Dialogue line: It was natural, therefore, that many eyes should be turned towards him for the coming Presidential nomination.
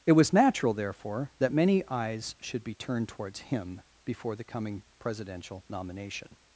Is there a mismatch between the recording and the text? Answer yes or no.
yes